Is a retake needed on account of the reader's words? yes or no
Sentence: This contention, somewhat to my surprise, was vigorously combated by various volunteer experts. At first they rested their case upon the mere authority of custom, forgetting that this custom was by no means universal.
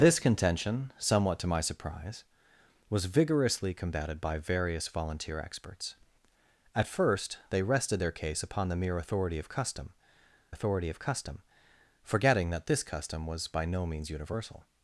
yes